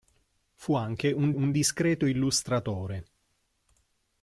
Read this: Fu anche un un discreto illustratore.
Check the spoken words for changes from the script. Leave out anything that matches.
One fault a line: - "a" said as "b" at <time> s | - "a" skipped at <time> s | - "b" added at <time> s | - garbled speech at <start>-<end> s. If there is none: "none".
none